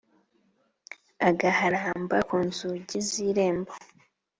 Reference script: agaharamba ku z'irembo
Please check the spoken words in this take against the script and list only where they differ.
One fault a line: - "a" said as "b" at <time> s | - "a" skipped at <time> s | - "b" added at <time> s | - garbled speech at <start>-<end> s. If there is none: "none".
- "nzugi" added at 2.4 s